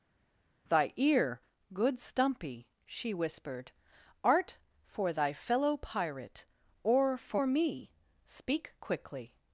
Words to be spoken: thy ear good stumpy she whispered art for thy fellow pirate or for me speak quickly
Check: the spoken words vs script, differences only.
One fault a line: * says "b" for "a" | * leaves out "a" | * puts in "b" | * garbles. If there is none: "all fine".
all fine